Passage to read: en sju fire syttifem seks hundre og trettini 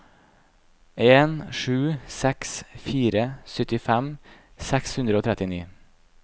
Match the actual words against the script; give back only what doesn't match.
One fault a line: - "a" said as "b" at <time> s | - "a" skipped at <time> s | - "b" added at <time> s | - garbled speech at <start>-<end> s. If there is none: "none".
- "seks" added at 2.2 s